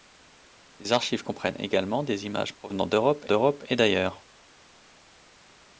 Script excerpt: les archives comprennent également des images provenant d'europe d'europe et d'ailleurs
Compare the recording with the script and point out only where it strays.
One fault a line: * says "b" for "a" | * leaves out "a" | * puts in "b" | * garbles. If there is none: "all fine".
all fine